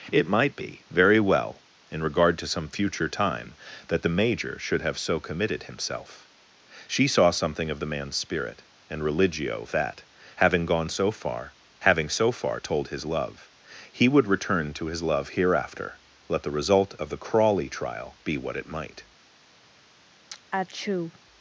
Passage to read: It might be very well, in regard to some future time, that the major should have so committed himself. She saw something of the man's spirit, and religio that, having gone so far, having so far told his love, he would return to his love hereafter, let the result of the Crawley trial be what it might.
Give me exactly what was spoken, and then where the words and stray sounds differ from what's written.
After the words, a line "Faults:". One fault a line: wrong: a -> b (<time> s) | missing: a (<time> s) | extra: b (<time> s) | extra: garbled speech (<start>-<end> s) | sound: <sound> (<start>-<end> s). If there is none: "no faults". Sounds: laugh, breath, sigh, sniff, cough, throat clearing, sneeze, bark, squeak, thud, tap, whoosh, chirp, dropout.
It might be very well, in regard to some future time, that the major should have so committed himself. She saw something of the man's spirit, and religio that, having gone so far, having so far told his love, he would return to his love hereafter, let the result of the Crawley trial be what it might.
Faults:
sound: sneeze (20.3-21.2 s)